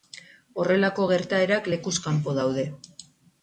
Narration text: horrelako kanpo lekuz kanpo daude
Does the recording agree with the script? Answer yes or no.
no